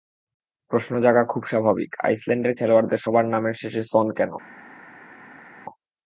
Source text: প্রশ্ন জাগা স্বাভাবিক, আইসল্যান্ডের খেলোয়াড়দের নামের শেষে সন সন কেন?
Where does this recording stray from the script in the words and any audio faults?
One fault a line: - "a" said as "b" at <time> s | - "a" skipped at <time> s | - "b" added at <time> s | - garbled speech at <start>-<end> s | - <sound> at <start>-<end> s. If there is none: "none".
- "খুব" added at 1.2 s
- "সবার" added at 3.0 s
- "সন" skipped at 4.1 s